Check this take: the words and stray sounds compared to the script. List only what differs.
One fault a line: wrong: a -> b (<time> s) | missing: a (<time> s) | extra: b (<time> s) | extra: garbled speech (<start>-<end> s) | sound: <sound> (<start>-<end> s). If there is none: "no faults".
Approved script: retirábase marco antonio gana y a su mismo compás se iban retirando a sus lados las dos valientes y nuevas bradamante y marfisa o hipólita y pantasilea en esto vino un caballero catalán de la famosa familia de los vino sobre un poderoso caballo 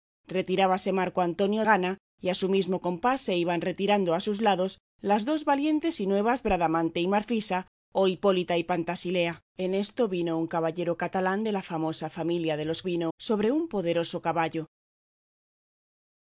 no faults